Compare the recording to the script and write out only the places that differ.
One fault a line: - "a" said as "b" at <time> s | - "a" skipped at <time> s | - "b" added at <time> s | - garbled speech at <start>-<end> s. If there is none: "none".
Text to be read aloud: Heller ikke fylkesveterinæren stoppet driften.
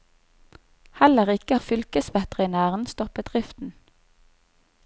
none